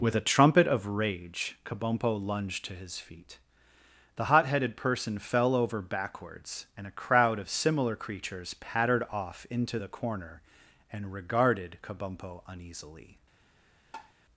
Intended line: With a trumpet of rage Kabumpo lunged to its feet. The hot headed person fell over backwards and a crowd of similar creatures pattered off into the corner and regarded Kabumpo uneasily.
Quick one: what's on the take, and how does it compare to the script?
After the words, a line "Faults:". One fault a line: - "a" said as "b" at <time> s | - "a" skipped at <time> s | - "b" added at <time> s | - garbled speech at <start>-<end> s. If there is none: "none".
With a trumpet of rage Kabumpo lunged to his feet. The hot headed person fell over backwards and a crowd of similar creatures pattered off into the corner and regarded Kabumpo uneasily.
Faults:
- "its" said as "his" at 2.7 s